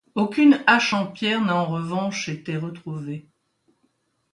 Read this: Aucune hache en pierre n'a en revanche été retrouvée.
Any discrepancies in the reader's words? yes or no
no